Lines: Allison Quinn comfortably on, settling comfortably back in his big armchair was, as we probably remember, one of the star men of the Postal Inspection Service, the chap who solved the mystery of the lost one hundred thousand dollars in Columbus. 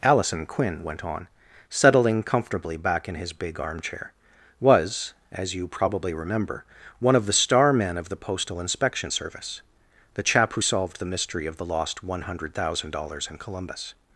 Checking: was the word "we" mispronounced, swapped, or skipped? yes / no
yes